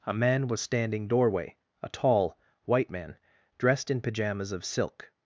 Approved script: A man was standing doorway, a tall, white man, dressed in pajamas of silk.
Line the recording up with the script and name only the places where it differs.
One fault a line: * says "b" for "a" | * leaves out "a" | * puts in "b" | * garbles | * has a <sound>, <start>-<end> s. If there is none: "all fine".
all fine